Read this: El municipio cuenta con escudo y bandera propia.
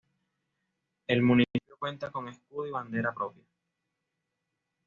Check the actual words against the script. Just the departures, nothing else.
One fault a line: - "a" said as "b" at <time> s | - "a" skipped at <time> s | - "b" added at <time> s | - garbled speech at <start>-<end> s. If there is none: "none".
none